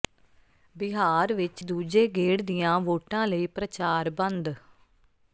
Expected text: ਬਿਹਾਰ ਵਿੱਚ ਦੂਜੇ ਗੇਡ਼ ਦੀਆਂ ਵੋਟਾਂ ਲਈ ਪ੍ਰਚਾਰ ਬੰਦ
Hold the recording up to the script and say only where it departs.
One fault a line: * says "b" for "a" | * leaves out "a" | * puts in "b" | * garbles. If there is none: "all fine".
all fine